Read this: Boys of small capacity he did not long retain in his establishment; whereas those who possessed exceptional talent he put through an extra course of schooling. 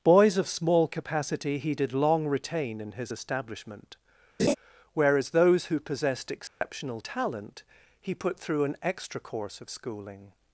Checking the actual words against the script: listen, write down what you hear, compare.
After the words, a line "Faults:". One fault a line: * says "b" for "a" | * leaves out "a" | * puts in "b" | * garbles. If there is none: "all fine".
Boys of small capacity he did long retain in his establishment; whereas those who possessed exceptional talent he put through an extra course of schooling.
Faults:
* leaves out "not"